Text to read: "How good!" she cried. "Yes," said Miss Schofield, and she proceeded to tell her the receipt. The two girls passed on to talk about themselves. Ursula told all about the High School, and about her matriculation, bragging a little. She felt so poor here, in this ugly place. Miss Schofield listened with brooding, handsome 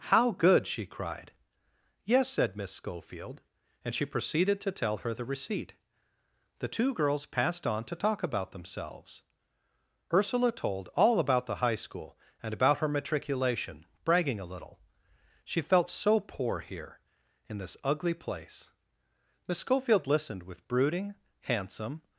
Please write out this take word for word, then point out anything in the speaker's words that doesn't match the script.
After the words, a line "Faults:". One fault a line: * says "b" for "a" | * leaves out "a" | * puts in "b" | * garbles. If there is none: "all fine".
"How good!" she cried. "Yes," said Miss Schofield, and she proceeded to tell her the receipt. The two girls passed on to talk about themselves. Ursula told all about the High School, and about her matriculation, bragging a little. She felt so poor here, in this ugly place. Miss Schofield listened with brooding, handsome
Faults:
all fine